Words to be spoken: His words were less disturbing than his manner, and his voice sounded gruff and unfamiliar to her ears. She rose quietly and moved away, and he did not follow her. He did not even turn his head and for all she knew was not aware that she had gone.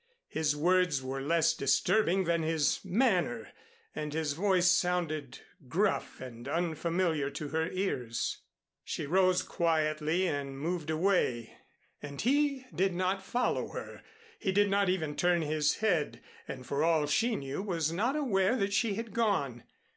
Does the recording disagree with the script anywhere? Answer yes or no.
no